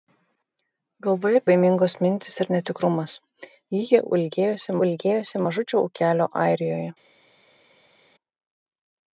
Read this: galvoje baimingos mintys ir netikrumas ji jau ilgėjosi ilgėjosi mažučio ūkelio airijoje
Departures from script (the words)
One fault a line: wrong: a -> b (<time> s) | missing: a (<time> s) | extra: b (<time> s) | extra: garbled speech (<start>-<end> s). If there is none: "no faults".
no faults